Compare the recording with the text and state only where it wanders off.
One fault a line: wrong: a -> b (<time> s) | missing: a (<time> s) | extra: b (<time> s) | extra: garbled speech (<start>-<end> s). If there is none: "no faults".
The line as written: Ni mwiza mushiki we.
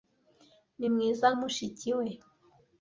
no faults